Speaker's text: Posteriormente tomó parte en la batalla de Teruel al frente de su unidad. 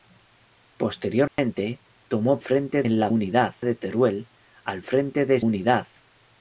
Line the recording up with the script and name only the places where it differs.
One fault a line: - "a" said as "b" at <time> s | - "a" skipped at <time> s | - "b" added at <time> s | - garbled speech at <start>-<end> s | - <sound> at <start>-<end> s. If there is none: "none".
- dropout at 1.3-1.4 s
- "parte" said as "frente" at 2.4 s
- "batalla" said as "unidad" at 3.1 s
- "su" skipped at 5.4 s